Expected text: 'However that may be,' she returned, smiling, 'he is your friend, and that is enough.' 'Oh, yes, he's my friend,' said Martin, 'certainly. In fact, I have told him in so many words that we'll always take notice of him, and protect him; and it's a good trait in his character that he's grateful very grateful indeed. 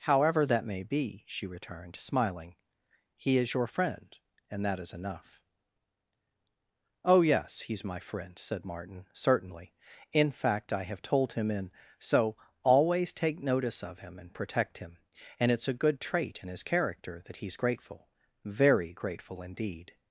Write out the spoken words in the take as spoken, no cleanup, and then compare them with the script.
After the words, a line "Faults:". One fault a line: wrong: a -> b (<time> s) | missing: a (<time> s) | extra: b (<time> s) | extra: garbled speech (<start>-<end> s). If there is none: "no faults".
'However that may be,' she returned, smiling, 'he is your friend, and that is enough.' 'Oh, yes, he's my friend,' said Martin, 'certainly. In fact, I have told him in so always take notice of him, and protect him; and it's a good trait in his character that he's grateful very grateful indeed.
Faults:
missing: many words that we'll (12.3 s)